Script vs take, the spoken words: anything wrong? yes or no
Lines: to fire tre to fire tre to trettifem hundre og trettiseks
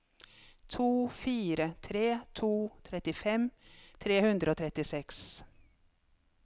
yes